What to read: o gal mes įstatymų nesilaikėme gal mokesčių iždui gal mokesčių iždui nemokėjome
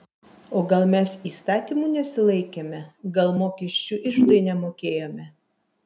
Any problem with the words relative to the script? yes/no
yes